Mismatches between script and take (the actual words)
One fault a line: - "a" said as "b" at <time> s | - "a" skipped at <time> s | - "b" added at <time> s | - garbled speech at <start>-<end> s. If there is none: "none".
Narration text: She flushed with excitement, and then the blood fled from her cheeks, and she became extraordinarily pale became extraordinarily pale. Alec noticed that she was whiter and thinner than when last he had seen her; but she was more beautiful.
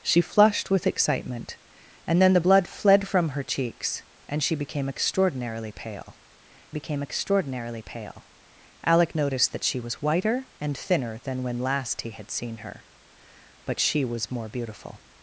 none